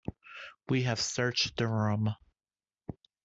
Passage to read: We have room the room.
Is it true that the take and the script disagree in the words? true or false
true